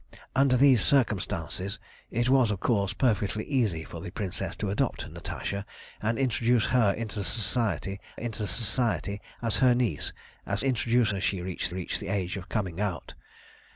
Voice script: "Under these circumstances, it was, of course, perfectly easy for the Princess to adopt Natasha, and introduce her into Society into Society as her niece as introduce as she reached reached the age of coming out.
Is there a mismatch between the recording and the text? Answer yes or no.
no